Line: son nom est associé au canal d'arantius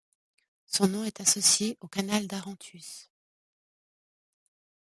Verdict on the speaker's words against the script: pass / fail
pass